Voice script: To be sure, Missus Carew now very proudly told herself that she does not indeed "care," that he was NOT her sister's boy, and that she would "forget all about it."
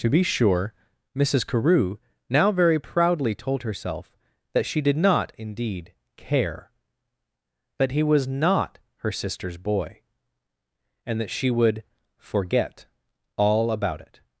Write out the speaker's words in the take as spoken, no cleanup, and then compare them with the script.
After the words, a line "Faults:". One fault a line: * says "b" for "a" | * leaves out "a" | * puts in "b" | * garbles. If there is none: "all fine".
To be sure, Missus Carew now very proudly told herself that she did not indeed "care," that he was NOT her sister's boy, and that she would "forget all about it."
Faults:
* says "did" for "does"